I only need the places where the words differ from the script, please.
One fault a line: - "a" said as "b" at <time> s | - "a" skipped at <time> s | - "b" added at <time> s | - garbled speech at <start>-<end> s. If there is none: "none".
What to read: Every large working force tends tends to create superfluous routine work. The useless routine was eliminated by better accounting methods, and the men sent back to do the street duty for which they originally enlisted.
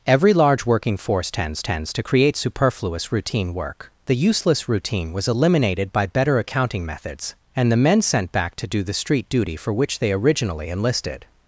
none